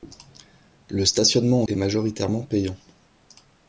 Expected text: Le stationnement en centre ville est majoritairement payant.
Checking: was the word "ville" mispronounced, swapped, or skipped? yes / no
yes